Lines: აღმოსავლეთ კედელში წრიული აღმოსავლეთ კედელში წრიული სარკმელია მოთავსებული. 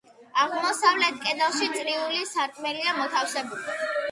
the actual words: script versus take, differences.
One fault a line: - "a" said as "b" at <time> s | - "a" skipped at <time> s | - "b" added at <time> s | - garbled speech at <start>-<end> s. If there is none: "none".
- "აღმოსავლეთ კედელში წრიული" skipped at 2.2 s